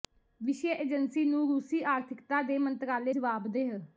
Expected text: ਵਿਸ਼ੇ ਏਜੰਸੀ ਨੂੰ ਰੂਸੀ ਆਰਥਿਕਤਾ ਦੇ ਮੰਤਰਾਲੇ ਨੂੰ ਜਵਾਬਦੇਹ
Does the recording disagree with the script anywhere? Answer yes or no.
yes